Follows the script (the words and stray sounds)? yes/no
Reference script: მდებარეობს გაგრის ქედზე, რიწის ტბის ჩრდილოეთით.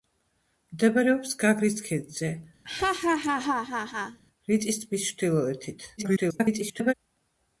no